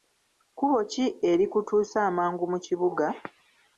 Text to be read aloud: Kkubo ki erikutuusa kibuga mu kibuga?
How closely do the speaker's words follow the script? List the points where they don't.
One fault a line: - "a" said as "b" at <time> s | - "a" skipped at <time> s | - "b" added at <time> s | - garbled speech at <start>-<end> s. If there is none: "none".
- "kibuga" said as "amangu" at 2.1 s